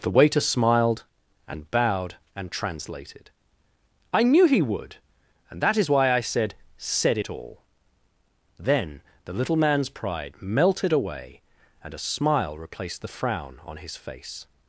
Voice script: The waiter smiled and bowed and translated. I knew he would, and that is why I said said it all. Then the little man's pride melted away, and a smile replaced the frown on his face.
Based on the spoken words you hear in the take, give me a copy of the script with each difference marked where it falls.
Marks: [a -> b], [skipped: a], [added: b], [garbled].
The waiter smiled and bowed and translated. I knew he would, and that is why I said said it all. Then the little man's pride melted away, and a smile replaced the frown on his face.